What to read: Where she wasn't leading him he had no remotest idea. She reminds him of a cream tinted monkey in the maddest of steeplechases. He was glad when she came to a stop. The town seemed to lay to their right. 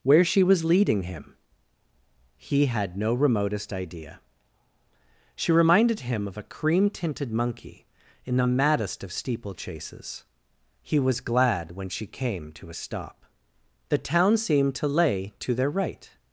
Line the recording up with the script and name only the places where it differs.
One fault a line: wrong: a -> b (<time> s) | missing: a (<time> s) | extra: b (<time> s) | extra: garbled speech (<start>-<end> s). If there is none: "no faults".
wrong: wasn't -> was (0.4 s)
wrong: reminds -> reminded (5.5 s)